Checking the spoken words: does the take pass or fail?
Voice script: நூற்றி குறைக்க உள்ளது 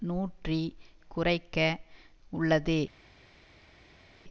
pass